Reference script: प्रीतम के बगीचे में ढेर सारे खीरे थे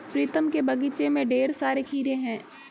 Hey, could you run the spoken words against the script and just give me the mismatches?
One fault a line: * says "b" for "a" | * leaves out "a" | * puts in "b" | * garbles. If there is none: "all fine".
* says "हैं" for "थे"